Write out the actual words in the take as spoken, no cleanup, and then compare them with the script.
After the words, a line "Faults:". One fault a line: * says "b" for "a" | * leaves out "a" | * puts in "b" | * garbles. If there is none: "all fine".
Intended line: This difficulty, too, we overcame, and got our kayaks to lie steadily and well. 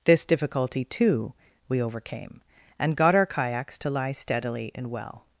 This difficulty, too, we overcame, and got our kayaks to lie steadily and well.
Faults:
all fine